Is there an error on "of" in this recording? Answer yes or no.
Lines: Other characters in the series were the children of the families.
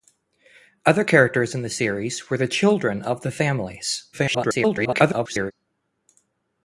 no